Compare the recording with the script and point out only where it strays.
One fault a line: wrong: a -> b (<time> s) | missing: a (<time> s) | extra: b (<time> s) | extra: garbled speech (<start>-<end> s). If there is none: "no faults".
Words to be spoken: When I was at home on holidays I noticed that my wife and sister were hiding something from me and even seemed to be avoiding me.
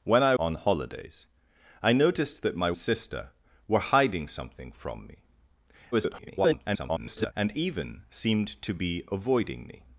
missing: was at home (0.3 s)
missing: wife and (2.7 s)
extra: garbled speech (5.9-7.3 s)